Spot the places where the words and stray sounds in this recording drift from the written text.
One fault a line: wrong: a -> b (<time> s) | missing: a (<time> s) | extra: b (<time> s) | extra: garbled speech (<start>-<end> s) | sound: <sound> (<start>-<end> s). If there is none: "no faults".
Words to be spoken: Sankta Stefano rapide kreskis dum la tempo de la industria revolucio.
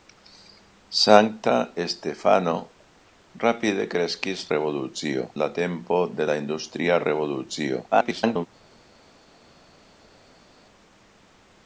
wrong: dum -> revolucio (4.5 s)
extra: garbled speech (7.9-8.5 s)